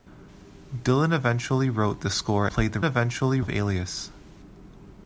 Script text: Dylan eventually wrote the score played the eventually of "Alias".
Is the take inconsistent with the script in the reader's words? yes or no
no